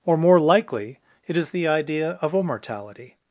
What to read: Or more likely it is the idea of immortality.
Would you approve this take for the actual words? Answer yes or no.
yes